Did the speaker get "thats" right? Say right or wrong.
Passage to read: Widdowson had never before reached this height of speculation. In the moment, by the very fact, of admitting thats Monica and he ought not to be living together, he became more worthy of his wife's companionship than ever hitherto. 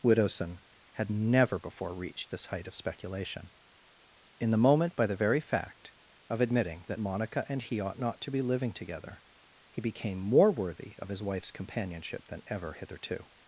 wrong